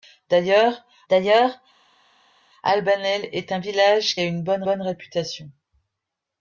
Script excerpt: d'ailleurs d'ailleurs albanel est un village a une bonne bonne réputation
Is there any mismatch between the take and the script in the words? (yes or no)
no